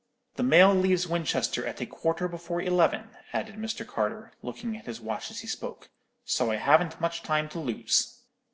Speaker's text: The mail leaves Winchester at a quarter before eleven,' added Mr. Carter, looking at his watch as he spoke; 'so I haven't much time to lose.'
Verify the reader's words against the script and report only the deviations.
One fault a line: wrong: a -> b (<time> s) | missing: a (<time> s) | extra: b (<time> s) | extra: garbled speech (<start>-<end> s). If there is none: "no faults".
no faults